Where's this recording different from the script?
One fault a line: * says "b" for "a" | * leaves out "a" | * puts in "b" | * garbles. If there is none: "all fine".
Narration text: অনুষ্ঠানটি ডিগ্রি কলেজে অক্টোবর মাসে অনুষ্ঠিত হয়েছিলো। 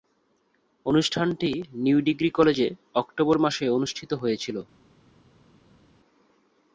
* puts in "নিউ"